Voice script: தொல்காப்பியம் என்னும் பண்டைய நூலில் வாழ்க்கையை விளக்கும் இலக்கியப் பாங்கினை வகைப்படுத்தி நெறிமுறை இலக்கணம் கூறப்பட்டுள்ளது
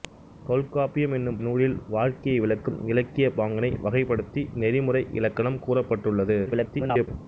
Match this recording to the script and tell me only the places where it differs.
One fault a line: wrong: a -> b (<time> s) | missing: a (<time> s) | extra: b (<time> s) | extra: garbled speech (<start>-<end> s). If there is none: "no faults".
missing: பண்டைய (1.4 s)
extra: garbled speech (6.5-7.1 s)